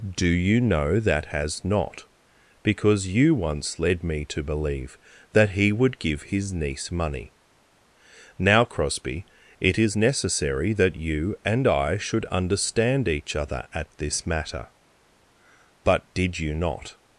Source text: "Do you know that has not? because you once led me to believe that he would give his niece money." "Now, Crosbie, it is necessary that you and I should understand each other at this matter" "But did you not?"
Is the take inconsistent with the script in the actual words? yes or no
no